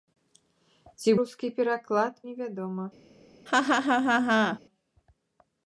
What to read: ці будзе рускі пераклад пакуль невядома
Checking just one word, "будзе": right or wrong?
wrong